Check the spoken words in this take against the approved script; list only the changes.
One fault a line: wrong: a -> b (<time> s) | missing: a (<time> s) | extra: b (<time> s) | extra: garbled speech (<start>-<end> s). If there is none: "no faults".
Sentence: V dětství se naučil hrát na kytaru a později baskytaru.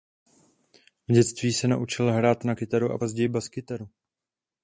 no faults